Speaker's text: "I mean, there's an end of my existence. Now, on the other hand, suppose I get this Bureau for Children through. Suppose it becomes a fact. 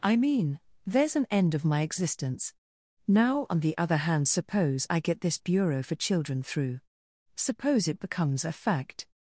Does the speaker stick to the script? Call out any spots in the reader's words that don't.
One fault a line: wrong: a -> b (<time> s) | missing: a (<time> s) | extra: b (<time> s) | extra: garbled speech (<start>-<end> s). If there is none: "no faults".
no faults